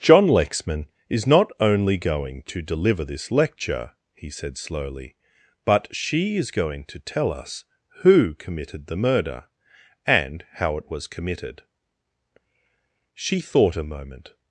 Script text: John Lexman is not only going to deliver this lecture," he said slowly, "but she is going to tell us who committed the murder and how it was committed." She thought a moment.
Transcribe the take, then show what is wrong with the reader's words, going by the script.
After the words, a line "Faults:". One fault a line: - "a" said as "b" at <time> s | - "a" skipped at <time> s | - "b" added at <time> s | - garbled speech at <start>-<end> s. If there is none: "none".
John Lexman is not only going to deliver this lecture," he said slowly, "but she is going to tell us who committed the murder and how it was committed." She thought a moment.
Faults:
none